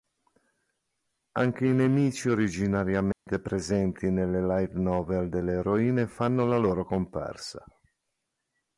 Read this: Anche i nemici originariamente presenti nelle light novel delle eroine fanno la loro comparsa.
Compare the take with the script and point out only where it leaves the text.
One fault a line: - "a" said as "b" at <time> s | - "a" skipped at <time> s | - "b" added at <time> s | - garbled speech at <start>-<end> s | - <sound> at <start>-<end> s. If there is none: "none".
- dropout at 3.1-3.3 s